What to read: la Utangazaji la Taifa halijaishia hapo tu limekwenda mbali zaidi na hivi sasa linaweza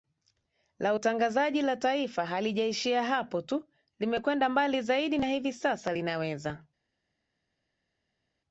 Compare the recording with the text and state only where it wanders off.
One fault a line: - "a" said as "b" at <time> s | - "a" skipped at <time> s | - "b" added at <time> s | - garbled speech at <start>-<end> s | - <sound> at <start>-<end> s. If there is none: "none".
none